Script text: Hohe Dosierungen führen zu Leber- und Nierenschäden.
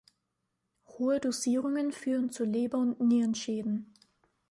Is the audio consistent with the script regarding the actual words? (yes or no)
yes